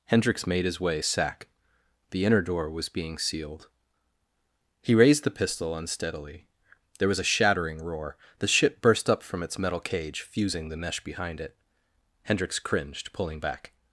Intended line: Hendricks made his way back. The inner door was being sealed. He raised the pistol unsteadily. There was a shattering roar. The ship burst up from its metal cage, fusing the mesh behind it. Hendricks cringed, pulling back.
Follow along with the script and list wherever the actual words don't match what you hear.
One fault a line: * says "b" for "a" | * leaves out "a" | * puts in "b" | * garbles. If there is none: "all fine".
* says "sack" for "back"